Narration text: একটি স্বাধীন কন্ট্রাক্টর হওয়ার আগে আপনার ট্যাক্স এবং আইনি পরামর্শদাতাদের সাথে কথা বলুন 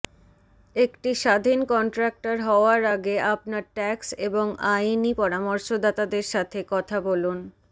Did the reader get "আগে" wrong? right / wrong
right